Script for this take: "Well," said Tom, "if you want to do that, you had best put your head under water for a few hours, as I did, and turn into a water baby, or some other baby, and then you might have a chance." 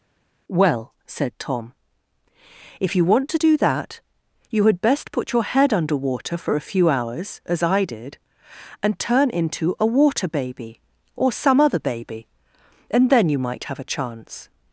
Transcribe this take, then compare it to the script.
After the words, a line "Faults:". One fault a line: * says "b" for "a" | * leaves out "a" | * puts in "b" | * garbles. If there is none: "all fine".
"Well," said Tom, "if you want to do that, you had best put your head under water for a few hours, as I did, and turn into a water baby, or some other baby, and then you might have a chance."
Faults:
all fine